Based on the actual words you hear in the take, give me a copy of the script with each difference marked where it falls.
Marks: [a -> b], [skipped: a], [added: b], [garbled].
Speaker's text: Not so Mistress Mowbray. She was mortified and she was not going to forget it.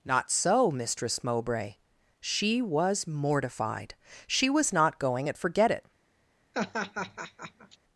Not so Mistress Mowbray. She was mortified [skipped: and] she was not going [to -> at] forget it.